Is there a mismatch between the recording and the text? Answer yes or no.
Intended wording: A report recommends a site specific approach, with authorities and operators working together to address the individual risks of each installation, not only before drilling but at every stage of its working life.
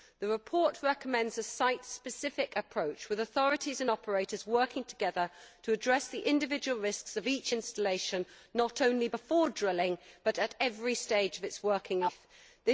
yes